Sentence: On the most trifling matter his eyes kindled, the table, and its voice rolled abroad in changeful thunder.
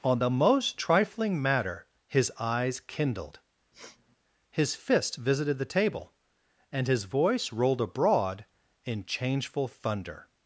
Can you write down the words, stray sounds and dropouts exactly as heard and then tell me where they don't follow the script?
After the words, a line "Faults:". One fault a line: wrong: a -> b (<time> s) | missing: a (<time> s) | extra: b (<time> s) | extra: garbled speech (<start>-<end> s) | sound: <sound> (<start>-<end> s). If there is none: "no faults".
On the most trifling matter his eyes kindled, his fist visited the table, and his voice rolled abroad in changeful thunder.
Faults:
sound: sniff (3.7-4.2 s)
extra: his fist visited (4.5 s)
wrong: its -> his (6.9 s)